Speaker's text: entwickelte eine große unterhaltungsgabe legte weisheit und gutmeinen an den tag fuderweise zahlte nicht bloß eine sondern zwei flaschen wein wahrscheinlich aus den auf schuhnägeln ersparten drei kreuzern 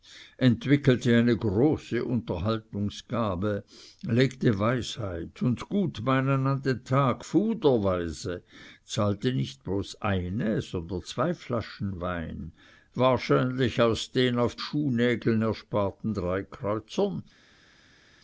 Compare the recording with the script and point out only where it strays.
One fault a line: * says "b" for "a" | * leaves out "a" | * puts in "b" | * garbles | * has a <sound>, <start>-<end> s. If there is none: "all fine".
all fine